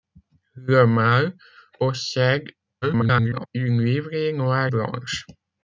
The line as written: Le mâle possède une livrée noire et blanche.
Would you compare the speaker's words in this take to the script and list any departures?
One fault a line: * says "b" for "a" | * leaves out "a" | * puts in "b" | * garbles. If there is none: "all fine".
* garbles
* leaves out "et"